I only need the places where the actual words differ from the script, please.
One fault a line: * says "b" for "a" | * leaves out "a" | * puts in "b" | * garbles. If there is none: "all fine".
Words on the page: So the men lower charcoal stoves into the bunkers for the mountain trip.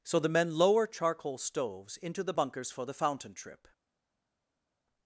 * says "fountain" for "mountain"